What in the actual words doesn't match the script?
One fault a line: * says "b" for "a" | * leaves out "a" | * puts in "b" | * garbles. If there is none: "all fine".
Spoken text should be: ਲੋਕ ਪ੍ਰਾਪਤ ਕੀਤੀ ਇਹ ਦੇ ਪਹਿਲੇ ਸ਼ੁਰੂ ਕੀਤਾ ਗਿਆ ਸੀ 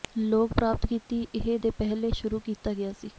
all fine